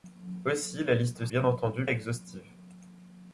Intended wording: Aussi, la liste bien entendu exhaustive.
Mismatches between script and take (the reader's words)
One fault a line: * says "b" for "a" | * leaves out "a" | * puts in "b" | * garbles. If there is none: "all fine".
all fine